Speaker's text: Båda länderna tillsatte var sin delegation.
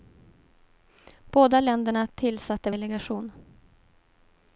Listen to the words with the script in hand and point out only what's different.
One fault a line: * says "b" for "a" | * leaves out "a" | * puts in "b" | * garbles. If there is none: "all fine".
* leaves out "var sin"